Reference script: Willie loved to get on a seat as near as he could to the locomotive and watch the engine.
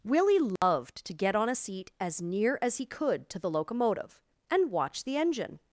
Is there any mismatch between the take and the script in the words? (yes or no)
no